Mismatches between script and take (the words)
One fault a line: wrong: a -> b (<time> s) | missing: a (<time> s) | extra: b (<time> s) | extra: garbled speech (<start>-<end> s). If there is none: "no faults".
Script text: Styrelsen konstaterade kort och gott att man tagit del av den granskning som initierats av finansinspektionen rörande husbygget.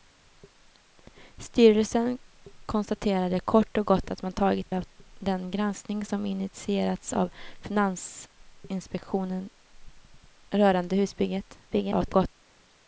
missing: del (4.7 s)
extra: garbled speech (11.7-12.3 s)